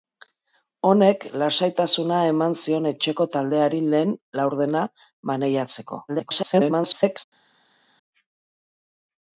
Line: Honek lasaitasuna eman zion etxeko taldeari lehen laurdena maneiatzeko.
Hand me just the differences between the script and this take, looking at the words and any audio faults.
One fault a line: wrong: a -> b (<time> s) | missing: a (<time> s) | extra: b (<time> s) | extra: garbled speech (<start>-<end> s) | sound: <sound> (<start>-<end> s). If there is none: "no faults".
extra: garbled speech (6.1-7.2 s)